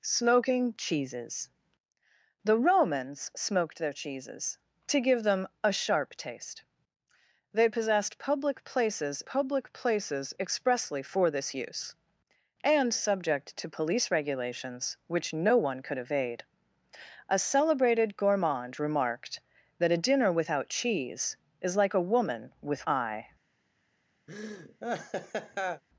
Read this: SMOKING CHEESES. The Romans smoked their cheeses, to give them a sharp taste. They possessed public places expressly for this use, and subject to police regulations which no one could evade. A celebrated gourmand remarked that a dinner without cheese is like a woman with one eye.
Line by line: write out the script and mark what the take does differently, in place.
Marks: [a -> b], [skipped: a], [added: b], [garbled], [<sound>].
SMOKING CHEESES. The Romans smoked their cheeses, to give them a sharp taste. They possessed public places [added: public places] expressly for this use, and subject to police regulations which no one could evade. A celebrated gourmand remarked that a dinner without cheese is like a woman with [skipped: one] eye. [laugh]